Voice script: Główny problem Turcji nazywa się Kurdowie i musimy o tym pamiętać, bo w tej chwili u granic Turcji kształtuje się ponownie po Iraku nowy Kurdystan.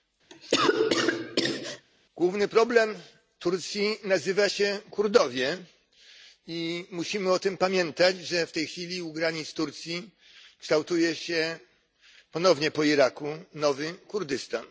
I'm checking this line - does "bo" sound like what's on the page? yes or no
no